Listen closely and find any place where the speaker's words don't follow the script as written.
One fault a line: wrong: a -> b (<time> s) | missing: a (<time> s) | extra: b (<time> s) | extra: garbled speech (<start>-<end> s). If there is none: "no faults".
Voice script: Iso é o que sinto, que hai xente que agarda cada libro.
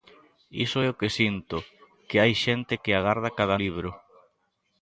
no faults